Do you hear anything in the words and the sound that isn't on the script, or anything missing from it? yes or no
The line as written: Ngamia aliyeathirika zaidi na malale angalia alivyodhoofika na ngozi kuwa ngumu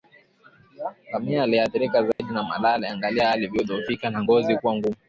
yes